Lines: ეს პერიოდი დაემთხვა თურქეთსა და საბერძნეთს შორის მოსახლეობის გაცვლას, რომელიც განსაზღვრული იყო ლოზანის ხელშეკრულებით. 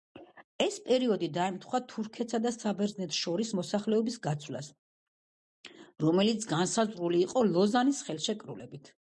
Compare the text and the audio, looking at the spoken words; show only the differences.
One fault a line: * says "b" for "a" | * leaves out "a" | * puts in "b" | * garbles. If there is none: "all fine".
all fine